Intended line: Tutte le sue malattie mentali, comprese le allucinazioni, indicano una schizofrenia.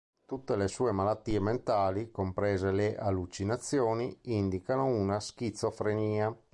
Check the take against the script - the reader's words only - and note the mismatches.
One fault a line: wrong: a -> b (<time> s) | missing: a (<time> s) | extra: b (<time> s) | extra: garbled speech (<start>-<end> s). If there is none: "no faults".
no faults